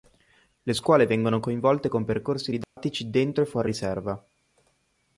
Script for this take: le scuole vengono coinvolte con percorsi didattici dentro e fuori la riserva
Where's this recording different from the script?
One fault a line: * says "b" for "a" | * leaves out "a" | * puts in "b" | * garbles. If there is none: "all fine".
* leaves out "la"